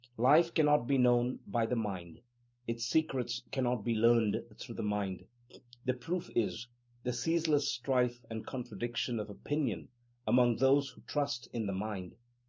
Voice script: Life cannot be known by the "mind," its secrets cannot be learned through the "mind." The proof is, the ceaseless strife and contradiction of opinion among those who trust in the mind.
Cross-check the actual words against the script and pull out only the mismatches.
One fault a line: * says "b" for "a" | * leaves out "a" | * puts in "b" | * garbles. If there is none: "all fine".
all fine